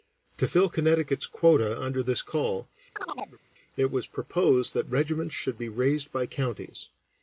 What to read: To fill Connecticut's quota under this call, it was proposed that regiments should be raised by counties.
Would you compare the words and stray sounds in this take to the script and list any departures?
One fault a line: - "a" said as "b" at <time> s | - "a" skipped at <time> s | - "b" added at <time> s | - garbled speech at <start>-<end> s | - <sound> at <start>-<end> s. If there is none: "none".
- chirp at 3.0-3.4 s